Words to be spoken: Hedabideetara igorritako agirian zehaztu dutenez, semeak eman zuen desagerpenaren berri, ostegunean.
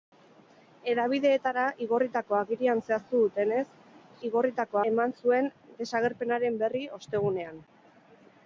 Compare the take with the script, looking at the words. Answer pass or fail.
fail